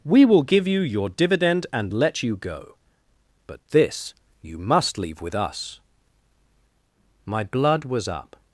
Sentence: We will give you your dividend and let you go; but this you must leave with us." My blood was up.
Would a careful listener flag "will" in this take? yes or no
no